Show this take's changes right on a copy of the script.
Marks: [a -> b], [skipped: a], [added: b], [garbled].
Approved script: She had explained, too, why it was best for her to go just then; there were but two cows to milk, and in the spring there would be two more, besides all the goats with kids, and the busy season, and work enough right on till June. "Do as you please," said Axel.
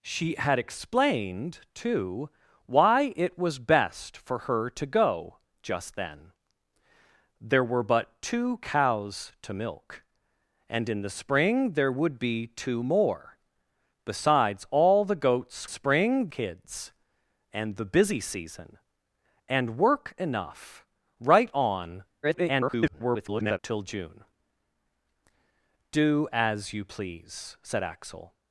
She had explained, too, why it was best for her to go just then; there were but two cows to milk, and in the spring there would be two more, besides all the goats [with -> spring] kids, and the busy season, and work enough right on [garbled] till June. "Do as you please," said Axel.